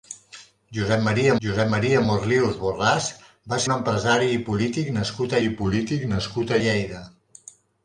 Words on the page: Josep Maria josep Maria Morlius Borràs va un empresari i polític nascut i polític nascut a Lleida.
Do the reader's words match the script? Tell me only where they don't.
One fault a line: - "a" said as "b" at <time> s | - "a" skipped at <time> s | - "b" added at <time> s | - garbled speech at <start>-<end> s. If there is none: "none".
none